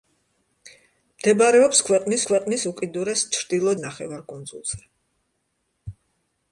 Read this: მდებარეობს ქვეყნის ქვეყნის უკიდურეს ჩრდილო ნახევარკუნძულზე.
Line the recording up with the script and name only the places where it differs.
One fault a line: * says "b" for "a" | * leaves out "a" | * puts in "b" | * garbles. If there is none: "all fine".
all fine